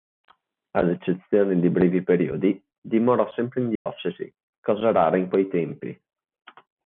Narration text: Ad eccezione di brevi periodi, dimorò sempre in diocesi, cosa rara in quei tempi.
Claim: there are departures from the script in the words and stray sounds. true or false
true